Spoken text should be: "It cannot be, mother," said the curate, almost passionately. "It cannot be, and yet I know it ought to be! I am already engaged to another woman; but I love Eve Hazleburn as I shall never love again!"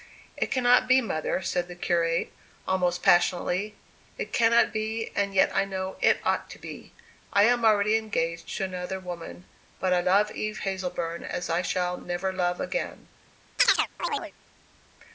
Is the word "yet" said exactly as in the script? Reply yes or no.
yes